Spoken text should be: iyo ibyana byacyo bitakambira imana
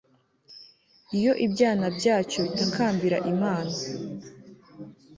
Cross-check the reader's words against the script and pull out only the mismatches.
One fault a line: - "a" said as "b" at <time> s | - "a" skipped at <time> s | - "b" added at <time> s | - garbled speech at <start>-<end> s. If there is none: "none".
none